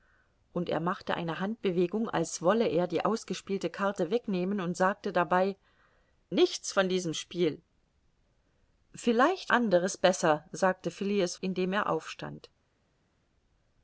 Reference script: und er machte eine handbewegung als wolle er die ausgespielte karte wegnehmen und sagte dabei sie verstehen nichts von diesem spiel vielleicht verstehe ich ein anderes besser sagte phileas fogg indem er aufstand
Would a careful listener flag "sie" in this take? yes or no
yes